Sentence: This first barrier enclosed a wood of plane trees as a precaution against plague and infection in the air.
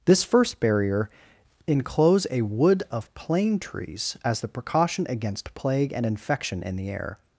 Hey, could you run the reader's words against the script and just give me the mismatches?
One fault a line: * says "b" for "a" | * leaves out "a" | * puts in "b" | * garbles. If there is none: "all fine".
* says "enclose" for "enclosed"
* says "the" for "a"